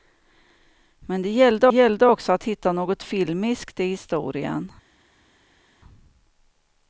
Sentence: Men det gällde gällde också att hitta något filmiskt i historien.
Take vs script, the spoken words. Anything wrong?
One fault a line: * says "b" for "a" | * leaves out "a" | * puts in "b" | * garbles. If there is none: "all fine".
all fine